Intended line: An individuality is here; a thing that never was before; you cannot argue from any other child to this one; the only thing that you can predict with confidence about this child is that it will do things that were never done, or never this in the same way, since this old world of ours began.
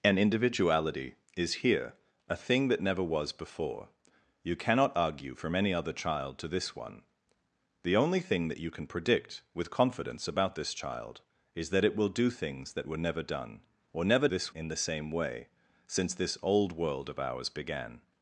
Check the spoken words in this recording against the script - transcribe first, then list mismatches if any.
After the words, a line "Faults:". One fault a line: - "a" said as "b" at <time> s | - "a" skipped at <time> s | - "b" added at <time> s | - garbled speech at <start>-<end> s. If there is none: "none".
An individuality is here; a thing that never was before; you cannot argue from any other child to this one; the only thing that you can predict with confidence about this child is that it will do things that were never done, or never this in the same way, since this old world of ours began.
Faults:
none